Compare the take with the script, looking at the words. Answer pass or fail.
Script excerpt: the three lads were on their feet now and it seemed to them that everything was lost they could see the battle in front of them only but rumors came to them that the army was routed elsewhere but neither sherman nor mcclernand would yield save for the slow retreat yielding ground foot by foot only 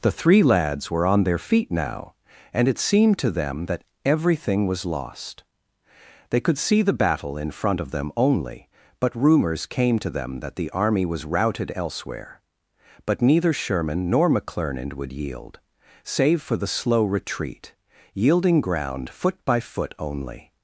pass